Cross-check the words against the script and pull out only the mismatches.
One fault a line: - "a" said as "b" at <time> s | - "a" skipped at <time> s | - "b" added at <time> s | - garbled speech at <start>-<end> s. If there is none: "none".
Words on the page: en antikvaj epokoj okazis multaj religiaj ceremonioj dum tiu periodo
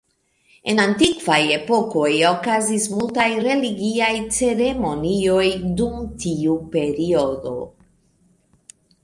none